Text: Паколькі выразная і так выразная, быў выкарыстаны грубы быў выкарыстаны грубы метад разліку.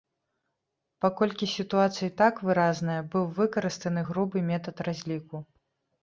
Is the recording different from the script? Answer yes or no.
yes